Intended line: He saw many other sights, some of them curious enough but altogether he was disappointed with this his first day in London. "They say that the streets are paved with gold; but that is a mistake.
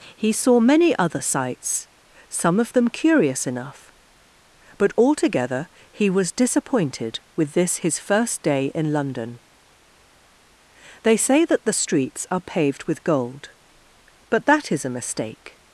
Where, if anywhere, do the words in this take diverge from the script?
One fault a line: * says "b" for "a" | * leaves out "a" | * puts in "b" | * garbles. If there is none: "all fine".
all fine